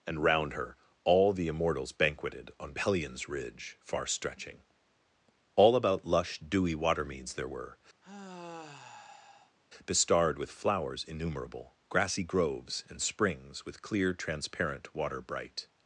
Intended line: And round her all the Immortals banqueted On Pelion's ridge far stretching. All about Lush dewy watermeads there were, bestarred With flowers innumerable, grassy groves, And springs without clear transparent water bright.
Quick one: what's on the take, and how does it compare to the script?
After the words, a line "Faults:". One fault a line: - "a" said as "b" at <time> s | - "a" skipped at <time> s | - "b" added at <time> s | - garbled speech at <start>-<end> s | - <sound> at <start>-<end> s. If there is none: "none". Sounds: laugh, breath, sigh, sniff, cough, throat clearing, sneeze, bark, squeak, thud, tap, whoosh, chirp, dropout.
And round her all the Immortals banqueted On Pelion's ridge far stretching. All about Lush dewy watermeads there were, bestarred With flowers innumerable, grassy groves, And springs with clear transparent water bright.
Faults:
- sigh at 8.0-9.6 s
- "without" said as "with" at 13.6 s